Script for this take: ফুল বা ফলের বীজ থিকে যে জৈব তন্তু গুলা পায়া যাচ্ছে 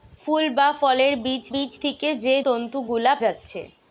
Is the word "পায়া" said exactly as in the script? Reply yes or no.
no